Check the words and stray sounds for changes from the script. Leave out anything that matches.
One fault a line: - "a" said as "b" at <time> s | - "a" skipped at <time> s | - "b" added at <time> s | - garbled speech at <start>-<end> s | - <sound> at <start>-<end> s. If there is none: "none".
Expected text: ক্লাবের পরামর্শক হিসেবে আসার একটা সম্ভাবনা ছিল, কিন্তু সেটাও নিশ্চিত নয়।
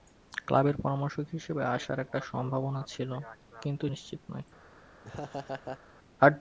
- "সেটাও" skipped at 3.9 s
- laugh at 5.0-5.8 s